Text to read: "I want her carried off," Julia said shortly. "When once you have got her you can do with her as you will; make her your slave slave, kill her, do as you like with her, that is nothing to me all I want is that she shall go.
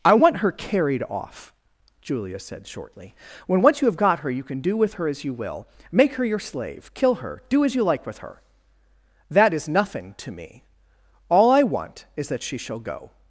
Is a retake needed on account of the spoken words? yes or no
yes